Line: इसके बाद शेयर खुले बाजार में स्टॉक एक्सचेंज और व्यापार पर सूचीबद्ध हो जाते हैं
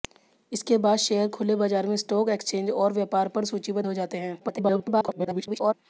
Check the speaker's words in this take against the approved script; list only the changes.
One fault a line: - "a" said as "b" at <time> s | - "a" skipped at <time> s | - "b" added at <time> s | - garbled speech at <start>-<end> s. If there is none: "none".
- garbled speech at 4.4-5.7 s